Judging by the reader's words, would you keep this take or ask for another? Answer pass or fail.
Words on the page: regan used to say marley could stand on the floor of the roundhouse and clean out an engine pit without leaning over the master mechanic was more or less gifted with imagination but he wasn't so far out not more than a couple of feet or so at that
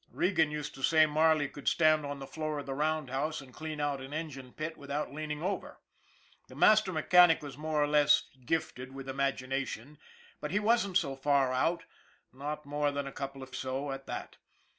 fail